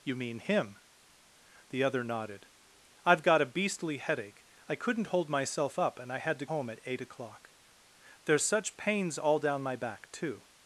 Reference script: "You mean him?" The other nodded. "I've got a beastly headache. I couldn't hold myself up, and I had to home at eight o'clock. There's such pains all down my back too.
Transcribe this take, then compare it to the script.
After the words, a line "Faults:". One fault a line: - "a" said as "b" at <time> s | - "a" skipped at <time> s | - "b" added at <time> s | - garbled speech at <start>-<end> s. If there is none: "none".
"You mean him?" The other nodded. "I've got a beastly headache. I couldn't hold myself up, and I had to home at eight o'clock. There's such pains all down my back too.
Faults:
none